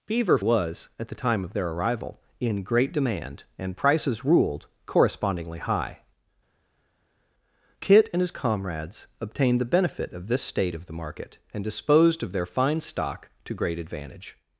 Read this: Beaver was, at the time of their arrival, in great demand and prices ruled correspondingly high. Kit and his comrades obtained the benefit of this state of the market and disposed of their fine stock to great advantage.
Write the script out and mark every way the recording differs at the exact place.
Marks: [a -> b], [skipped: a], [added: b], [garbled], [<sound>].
Beaver was, at the time of their arrival, in great demand and prices ruled correspondingly high. Kit and his comrades obtained the benefit of this state of the market and disposed of their fine stock to great advantage.